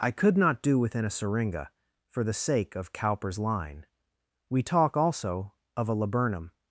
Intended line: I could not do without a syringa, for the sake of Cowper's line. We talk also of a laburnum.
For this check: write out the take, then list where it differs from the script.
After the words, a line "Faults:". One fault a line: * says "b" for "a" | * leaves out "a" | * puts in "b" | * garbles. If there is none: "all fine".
I could not do within a syringa, for the sake of Cowper's line. We talk also of a laburnum.
Faults:
* says "within" for "without"